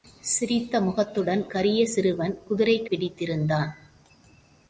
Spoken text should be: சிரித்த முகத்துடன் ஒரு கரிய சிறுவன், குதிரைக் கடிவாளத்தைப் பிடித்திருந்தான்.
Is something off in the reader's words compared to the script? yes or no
yes